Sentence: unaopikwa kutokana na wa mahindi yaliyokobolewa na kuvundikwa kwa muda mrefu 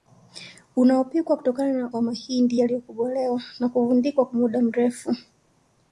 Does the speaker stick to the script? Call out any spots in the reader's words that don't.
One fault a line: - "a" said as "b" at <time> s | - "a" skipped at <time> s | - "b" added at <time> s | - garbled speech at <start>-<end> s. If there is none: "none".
none